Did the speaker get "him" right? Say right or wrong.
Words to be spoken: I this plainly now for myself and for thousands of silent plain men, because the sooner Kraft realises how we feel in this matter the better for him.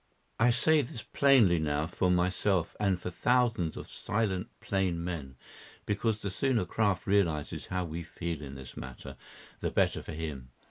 right